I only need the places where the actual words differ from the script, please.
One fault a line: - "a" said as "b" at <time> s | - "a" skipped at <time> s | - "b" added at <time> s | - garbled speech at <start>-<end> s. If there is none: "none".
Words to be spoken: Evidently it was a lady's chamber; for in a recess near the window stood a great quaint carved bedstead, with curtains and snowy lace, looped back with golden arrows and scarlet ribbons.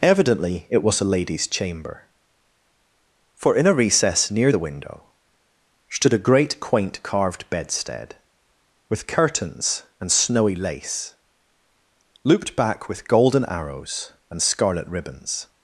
none